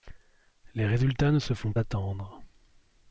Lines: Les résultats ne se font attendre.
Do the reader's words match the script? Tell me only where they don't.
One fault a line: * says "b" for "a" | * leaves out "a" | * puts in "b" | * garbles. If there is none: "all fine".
all fine